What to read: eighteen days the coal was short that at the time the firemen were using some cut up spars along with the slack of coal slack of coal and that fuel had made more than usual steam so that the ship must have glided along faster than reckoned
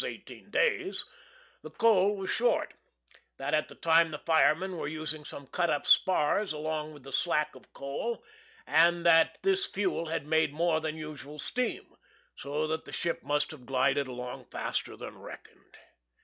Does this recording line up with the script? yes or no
no